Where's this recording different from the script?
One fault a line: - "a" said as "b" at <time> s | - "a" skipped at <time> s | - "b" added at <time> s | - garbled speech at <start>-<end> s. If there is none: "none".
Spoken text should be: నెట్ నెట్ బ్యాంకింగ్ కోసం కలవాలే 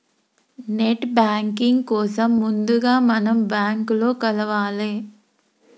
- "నెట్" skipped at 1.1 s
- "ముందుగా మనం బ్యాంకులో" added at 2.4 s